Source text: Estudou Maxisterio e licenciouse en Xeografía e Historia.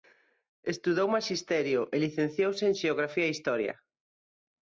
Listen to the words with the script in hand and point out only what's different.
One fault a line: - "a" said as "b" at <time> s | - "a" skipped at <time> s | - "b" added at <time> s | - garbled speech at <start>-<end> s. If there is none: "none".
none